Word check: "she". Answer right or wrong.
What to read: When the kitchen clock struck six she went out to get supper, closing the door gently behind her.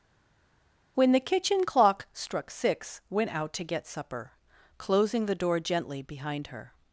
wrong